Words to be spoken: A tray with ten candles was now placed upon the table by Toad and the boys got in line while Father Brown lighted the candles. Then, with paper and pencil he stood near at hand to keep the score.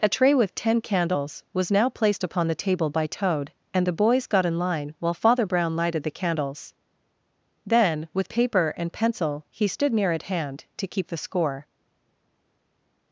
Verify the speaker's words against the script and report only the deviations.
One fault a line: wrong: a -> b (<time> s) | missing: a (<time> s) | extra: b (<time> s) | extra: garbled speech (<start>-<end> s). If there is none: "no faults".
no faults